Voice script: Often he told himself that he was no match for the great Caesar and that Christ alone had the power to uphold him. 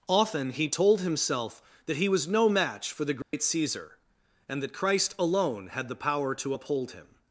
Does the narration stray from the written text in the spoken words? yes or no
no